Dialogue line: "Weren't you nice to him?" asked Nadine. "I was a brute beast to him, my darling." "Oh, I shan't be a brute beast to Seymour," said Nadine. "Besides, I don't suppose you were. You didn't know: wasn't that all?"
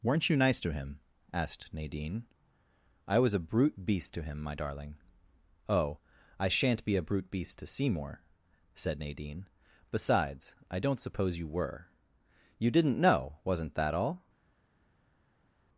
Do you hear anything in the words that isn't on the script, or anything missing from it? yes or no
no